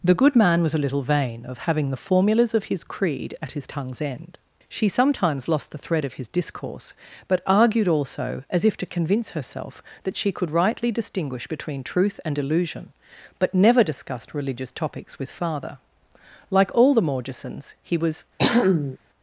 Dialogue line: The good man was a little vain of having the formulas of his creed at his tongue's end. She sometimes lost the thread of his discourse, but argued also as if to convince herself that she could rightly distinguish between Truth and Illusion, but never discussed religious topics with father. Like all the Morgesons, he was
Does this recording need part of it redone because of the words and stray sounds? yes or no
yes